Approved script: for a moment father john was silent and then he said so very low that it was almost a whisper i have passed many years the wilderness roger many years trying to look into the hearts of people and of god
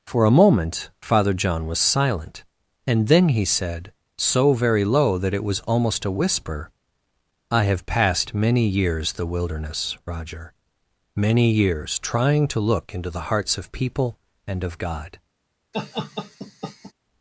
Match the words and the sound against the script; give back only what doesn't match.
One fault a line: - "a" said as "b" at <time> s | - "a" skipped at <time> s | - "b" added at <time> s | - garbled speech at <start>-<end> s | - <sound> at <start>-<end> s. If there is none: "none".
- laugh at 15.7-16.9 s